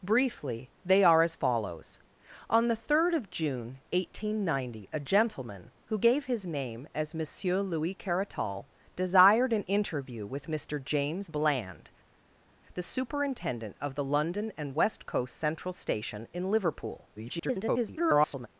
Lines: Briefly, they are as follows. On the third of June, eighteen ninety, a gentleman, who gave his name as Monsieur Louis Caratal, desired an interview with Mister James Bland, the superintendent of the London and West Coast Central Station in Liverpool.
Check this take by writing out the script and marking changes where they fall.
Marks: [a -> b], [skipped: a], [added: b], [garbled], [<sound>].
Briefly, they are as follows. On the third of June, eighteen ninety, a gentleman, who gave his name as Monsieur Louis Caratal, desired an interview with Mister James Bland, the superintendent of the London and West Coast Central Station in Liverpool. [garbled]